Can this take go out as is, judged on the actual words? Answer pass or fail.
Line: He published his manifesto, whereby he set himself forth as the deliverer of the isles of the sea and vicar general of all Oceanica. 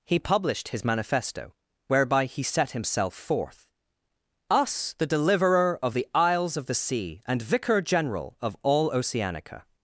fail